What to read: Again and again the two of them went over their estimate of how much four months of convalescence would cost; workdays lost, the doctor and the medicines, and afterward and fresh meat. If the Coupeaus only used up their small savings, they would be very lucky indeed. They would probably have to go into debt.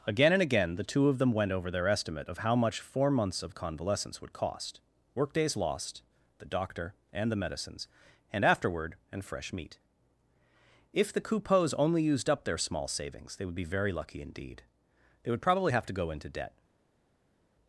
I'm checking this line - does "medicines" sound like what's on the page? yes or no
yes